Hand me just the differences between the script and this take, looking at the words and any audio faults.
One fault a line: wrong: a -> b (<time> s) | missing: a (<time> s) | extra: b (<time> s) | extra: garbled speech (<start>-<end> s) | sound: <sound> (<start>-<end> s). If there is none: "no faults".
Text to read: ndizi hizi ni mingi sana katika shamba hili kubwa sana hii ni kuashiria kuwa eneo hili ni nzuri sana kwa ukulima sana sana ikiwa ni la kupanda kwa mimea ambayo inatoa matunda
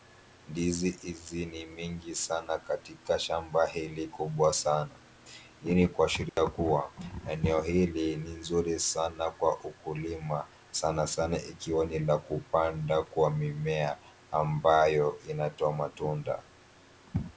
sound: dropout (6.3-6.4 s)